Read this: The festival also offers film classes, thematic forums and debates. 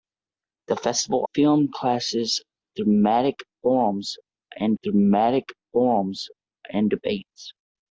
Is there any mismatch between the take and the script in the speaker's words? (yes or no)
yes